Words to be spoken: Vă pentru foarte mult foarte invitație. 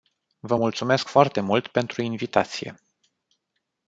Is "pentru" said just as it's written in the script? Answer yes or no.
no